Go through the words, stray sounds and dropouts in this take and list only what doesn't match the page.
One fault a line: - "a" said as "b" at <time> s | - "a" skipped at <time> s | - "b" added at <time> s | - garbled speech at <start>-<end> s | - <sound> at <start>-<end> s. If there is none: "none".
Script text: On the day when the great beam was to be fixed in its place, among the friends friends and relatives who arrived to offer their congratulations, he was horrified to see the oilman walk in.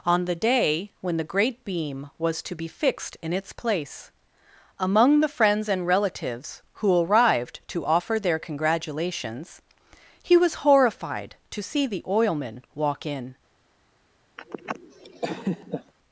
- "friends" skipped at 5.7 s
- laugh at 14.4-15.9 s